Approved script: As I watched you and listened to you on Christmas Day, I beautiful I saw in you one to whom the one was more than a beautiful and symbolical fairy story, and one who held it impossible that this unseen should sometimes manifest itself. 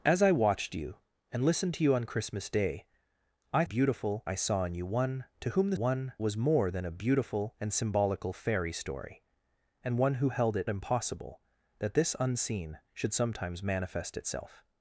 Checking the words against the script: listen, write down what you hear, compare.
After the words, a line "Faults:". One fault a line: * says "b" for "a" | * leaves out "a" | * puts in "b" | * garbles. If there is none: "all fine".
As I watched you and listened to you on Christmas Day, I beautiful I saw in you one to whom the one was more than a beautiful and symbolical fairy story, and one who held it impossible that this unseen should sometimes manifest itself.
Faults:
all fine